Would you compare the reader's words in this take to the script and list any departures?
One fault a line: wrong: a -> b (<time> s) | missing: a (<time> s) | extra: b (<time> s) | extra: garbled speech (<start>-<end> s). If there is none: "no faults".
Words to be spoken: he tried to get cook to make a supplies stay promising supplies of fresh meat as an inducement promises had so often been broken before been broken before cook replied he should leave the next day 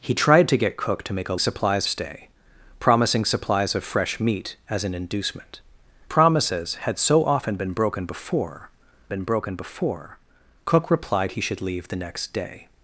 no faults